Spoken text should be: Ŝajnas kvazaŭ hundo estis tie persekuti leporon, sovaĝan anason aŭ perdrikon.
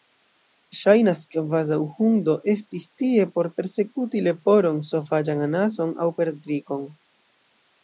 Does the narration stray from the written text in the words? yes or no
yes